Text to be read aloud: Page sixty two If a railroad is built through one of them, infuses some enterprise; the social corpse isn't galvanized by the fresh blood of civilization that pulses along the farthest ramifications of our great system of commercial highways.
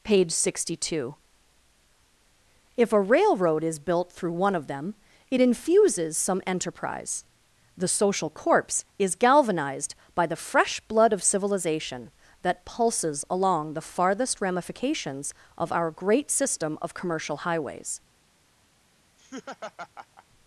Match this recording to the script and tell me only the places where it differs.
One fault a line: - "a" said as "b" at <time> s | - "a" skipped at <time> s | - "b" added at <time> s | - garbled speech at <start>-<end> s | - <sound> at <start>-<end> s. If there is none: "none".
- "it" added at 5.3 s
- "isn't" said as "is" at 9.0 s
- laugh at 19.2-20.3 s